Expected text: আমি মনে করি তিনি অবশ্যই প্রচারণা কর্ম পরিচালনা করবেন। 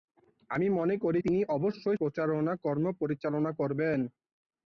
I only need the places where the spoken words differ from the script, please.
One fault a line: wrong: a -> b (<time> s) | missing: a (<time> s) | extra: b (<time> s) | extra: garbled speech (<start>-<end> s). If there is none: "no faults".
no faults